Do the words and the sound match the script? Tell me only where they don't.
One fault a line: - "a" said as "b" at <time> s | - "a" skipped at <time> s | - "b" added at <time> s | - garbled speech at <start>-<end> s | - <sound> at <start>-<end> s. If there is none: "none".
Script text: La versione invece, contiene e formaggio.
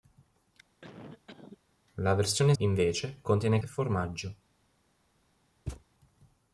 - cough at 0.8-1.6 s
- thud at 5.7-5.8 s